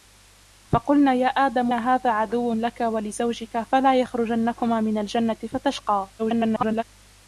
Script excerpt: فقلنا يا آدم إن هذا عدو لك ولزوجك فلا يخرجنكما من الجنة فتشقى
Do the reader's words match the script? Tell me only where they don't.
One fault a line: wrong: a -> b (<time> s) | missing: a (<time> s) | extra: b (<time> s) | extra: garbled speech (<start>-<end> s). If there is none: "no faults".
missing: إن (1.7 s)
extra: garbled speech (6.2-6.8 s)